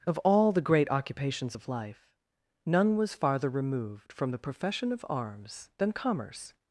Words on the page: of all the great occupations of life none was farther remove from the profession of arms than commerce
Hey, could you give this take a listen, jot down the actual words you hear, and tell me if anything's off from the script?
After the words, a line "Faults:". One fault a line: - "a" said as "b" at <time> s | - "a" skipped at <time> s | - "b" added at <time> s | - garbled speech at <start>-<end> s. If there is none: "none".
of all the great occupations of life none was farther removed from the profession of arms than commerce
Faults:
- "remove" said as "removed" at 3.5 s